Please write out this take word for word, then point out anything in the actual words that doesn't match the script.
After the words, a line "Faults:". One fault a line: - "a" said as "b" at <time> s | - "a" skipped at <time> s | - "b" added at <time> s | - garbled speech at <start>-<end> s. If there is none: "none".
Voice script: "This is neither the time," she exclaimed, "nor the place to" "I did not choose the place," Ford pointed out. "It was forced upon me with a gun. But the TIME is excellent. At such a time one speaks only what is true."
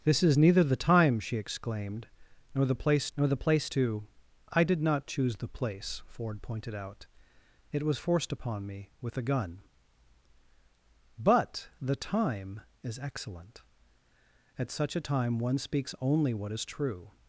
"This is neither the time," she exclaimed, "nor the place nor the place to" "I did not choose the place," Ford pointed out. "It was forced upon me with a gun. But the TIME is excellent. At such a time one speaks only what is true."
Faults:
- "nor the place" added at 3.2 s